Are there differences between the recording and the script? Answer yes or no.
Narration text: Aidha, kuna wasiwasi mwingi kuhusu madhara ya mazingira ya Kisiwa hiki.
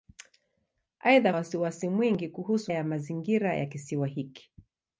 yes